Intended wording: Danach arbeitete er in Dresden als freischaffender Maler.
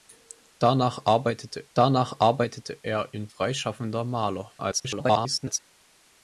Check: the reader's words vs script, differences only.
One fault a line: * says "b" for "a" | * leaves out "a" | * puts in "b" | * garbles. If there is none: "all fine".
* puts in "danach arbeitete"
* leaves out "Dresden als"
* garbles